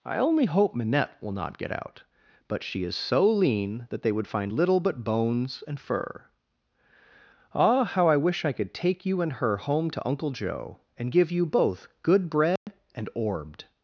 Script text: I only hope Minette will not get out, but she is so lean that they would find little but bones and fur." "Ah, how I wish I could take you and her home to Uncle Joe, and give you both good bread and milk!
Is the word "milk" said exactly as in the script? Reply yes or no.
no